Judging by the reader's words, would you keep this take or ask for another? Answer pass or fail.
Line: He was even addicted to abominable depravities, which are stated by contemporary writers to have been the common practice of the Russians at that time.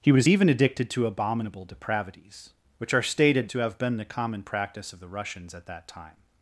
fail